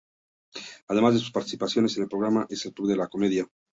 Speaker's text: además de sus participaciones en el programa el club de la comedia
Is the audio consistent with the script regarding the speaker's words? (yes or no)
yes